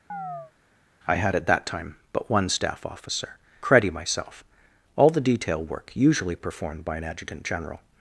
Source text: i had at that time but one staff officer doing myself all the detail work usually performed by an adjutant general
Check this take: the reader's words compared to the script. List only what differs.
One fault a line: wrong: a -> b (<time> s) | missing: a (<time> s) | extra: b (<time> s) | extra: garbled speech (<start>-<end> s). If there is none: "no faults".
wrong: doing -> credi (3.6 s)